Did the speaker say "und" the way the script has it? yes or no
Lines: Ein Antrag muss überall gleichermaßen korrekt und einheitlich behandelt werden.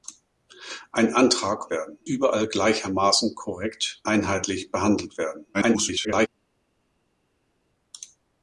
no